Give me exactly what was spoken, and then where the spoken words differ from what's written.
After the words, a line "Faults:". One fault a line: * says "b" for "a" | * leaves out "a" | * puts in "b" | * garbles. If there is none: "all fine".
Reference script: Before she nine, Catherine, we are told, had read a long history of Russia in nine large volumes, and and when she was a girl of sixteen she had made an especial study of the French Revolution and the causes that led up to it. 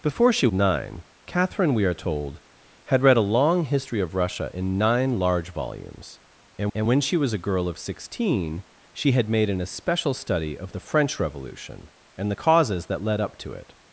Before she nine, Catherine, we are told, had read a long history of Russia in nine large volumes, and and when she was a girl of sixteen she had made an especial study of the French Revolution and the causes that led up to it.
Faults:
all fine